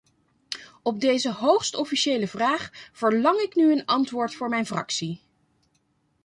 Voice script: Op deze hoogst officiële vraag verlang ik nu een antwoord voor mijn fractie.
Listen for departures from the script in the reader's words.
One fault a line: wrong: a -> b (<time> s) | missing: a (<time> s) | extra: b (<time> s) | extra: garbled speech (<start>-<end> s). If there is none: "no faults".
no faults